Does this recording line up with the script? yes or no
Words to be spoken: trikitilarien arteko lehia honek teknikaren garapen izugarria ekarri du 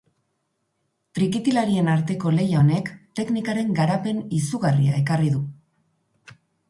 yes